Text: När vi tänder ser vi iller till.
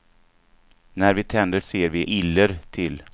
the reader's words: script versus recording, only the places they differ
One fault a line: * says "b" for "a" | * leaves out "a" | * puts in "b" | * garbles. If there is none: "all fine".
all fine